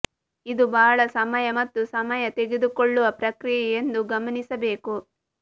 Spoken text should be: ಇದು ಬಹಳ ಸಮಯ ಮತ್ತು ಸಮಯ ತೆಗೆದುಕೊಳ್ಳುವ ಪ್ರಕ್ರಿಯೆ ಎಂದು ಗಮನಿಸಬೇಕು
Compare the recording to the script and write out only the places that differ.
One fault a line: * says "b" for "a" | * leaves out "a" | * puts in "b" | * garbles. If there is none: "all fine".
all fine